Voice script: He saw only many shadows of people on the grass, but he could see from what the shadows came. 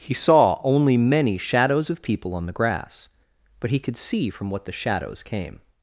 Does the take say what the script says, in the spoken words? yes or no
yes